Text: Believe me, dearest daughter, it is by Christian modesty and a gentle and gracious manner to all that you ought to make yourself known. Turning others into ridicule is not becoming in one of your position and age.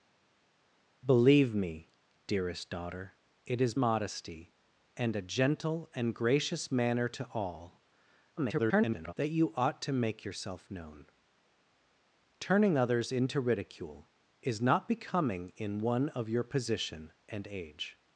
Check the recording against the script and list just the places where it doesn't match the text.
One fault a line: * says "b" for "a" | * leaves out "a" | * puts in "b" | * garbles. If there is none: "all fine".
* leaves out "by Christian"
* garbles